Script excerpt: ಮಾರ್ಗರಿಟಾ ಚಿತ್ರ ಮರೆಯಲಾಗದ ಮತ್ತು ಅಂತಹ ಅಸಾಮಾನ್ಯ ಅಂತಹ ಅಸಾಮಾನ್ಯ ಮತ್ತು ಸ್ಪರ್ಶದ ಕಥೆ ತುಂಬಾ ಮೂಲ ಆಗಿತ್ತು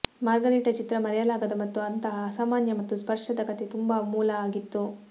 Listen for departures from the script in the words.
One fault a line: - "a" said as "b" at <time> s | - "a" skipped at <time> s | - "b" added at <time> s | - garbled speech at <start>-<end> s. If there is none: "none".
- "ಅಂತಹ ಅಸಾಮಾನ್ಯ" skipped at 2.8 s